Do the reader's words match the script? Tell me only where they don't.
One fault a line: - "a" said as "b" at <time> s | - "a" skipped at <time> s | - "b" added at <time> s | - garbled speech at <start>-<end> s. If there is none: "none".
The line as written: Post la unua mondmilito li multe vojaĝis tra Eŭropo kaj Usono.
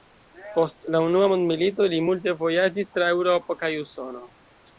none